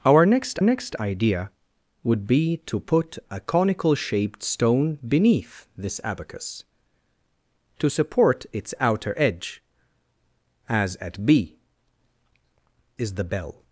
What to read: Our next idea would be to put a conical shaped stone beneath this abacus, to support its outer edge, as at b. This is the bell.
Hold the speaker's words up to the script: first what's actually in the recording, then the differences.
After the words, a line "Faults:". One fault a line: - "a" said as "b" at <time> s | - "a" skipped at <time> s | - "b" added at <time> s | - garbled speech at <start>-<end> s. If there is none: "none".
Our next next idea would be to put a conical shaped stone beneath this abacus, to support its outer edge, as at b. Is the bell.
Faults:
- "next" added at 0.6 s
- "This" skipped at 11.6 s